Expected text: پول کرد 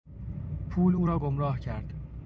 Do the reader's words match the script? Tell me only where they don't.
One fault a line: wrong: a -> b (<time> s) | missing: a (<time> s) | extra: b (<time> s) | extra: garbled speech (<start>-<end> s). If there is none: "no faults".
extra: او را گمراه (0.9 s)